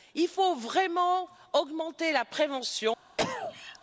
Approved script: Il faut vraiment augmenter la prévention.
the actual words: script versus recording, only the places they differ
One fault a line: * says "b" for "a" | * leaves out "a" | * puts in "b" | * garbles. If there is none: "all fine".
all fine